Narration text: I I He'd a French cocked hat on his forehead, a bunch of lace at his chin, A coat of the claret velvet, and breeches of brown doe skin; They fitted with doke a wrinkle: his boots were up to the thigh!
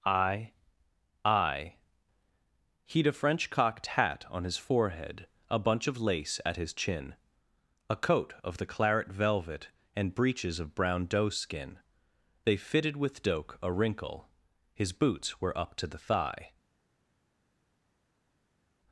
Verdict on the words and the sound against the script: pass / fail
pass